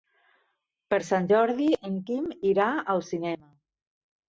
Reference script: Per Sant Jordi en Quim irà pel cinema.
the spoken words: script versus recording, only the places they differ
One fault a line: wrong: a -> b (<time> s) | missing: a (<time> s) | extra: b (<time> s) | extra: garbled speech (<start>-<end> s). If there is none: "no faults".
wrong: pel -> al (3.0 s)